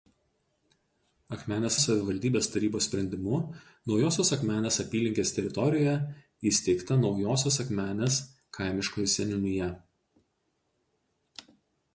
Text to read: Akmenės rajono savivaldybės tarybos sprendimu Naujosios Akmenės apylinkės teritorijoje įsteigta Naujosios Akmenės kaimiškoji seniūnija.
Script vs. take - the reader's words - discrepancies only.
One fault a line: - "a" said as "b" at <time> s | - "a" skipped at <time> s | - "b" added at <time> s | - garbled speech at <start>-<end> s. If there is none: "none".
- "rajono" skipped at 1.8 s